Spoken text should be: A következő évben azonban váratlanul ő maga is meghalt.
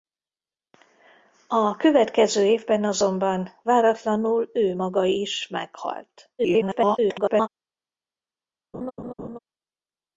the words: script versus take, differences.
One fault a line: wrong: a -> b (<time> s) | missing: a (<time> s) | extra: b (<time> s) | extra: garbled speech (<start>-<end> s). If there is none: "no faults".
extra: garbled speech (6.4-7.5 s)